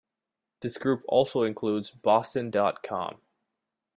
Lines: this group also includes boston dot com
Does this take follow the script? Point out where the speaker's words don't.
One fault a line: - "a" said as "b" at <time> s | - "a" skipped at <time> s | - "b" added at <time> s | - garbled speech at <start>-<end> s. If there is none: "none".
none